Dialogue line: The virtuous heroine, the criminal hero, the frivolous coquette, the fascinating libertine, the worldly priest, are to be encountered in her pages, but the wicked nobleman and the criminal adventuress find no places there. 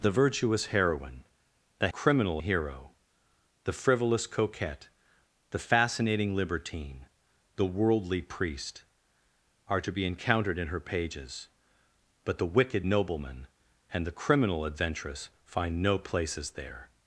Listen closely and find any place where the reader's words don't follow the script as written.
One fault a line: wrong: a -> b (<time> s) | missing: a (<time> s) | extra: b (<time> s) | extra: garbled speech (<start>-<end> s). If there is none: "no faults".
no faults